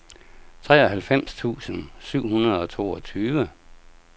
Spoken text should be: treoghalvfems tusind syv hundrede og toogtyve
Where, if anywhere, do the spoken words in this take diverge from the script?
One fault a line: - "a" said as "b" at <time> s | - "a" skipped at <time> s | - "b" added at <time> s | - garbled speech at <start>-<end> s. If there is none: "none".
none